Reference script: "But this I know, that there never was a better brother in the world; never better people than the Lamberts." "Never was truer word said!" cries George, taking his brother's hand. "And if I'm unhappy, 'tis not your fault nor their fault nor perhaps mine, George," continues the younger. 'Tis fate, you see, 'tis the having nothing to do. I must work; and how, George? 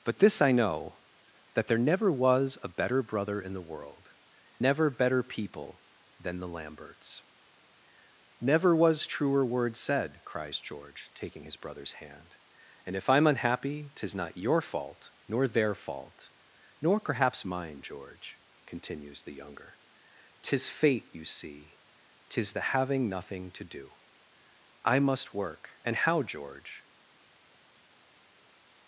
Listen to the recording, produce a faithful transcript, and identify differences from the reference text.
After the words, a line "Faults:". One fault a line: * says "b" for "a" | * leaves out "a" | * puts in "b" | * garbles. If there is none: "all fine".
"But this I know, that there never was a better brother in the world; never better people than the Lamberts." "Never was truer word said!" cries George, taking his brother's hand. "And if I'm unhappy, 'tis not your fault nor their fault nor perhaps mine, George," continues the younger. 'Tis fate, you see, 'tis the having nothing to do. I must work; and how, George?
Faults:
all fine